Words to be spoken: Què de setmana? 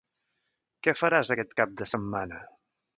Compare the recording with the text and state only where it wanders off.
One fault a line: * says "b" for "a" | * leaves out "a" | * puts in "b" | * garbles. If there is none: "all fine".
* puts in "faràs aquest cap"